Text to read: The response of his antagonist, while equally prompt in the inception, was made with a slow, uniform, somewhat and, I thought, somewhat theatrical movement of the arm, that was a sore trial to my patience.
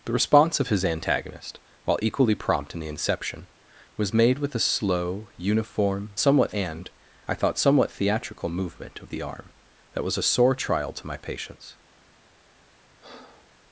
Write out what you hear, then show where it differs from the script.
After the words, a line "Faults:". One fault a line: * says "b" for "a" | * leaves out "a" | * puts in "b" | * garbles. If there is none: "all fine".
The response of his antagonist, while equally prompt in the inception, was made with a slow, uniform, somewhat and, I thought, somewhat theatrical movement of the arm, that was a sore trial to my patience.
Faults:
all fine